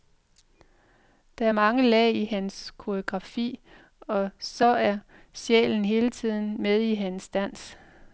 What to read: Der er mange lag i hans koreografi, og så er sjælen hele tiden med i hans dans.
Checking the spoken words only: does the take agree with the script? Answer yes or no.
yes